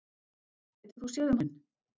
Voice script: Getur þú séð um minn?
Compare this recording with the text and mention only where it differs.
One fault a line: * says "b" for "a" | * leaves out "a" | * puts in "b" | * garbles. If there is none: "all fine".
all fine